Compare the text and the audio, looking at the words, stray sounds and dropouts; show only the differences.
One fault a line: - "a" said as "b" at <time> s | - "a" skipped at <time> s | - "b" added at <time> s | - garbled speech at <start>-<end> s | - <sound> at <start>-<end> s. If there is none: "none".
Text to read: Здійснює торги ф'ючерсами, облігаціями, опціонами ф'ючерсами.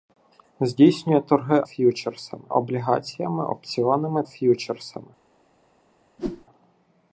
- whoosh at 6.2-6.5 s